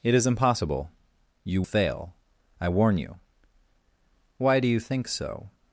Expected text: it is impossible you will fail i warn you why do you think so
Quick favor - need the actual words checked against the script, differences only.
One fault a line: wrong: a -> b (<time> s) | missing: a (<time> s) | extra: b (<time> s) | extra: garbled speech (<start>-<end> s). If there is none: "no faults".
missing: will (1.6 s)